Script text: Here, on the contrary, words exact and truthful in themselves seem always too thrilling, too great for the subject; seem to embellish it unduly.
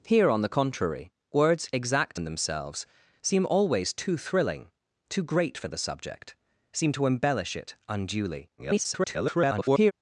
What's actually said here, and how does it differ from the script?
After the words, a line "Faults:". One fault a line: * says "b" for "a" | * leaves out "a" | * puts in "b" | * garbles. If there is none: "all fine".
Here, on the contrary, words exact in themselves seem always too thrilling, too great for the subject; seem to embellish it unduly. [garbled]
Faults:
* leaves out "and truthful"
* garbles